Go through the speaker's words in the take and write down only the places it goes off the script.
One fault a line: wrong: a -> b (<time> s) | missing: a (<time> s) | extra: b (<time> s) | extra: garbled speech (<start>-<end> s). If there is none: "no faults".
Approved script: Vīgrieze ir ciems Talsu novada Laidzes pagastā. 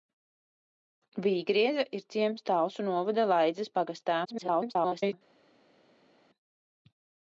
extra: garbled speech (4.2-5.1 s)